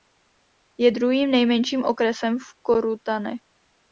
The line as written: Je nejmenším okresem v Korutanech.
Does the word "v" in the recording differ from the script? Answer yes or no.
no